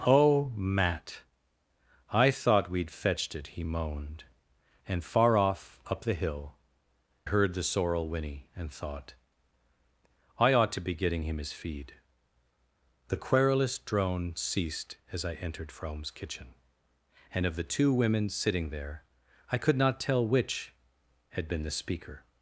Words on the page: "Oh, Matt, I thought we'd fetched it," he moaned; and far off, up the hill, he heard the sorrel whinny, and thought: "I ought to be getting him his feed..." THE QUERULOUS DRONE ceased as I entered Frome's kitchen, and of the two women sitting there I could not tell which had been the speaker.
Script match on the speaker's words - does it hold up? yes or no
no